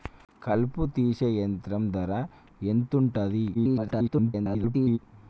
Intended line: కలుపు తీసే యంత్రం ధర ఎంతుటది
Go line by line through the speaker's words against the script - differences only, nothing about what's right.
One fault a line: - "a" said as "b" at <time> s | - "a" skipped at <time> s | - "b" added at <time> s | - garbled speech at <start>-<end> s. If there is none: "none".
- garbled speech at 3.5-5.0 s